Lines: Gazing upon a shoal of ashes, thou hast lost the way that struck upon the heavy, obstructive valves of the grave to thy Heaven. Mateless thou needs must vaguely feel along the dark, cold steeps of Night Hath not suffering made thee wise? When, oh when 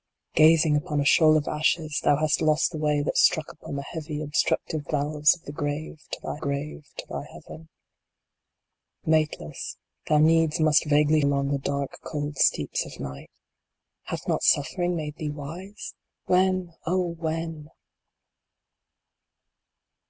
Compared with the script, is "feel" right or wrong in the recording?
wrong